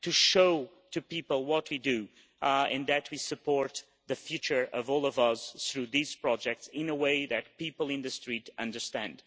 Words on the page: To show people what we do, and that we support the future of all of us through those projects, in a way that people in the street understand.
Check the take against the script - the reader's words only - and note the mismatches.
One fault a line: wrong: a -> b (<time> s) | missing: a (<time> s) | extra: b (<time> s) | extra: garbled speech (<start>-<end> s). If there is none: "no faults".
wrong: those -> these (5.9 s)